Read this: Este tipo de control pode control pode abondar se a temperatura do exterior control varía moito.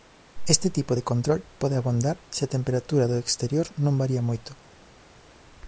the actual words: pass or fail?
fail